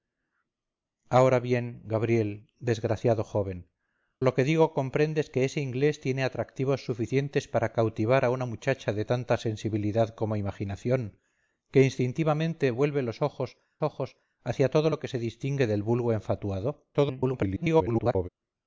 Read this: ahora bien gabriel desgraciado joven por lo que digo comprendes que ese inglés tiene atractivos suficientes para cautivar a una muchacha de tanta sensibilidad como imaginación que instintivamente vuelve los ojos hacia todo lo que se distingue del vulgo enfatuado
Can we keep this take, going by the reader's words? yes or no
no